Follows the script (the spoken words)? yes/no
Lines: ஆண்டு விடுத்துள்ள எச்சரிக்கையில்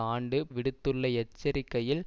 yes